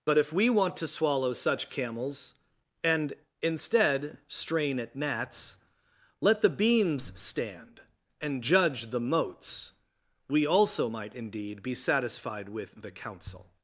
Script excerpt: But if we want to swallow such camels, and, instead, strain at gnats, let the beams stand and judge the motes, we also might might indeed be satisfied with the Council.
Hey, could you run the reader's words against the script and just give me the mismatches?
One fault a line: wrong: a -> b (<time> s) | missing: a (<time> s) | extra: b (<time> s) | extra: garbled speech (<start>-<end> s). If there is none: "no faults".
missing: might (11.2 s)